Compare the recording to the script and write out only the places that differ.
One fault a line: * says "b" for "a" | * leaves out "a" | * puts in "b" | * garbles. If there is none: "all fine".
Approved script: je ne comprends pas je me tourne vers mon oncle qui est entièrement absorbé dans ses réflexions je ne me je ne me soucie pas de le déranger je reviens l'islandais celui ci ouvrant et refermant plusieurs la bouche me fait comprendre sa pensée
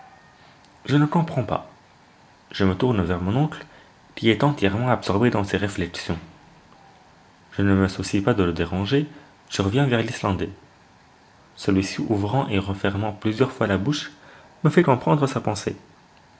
* leaves out "je ne me"
* puts in "vers"
* puts in "fois"